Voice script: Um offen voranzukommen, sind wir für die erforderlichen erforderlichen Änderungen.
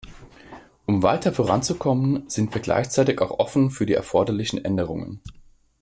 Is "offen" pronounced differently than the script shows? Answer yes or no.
yes